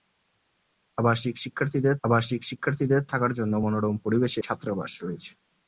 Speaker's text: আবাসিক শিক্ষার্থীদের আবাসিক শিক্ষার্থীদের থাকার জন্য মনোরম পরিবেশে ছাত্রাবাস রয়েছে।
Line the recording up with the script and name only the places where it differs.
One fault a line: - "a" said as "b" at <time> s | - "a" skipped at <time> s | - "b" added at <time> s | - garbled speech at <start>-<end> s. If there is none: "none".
none